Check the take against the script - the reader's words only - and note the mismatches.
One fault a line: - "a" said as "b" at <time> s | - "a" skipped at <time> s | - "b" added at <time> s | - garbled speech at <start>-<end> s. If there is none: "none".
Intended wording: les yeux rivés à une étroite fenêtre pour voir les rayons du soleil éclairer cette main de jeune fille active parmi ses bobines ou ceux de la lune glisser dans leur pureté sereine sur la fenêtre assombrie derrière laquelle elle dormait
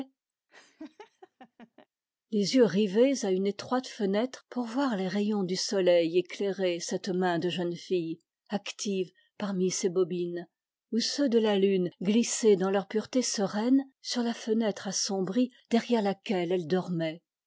none